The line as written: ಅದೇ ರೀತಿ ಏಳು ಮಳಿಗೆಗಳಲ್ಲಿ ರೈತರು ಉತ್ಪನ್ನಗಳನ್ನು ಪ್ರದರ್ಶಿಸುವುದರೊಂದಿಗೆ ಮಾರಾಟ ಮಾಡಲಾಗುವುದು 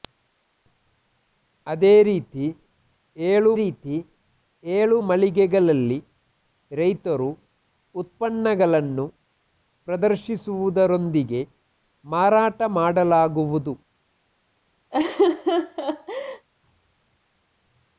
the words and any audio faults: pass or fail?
fail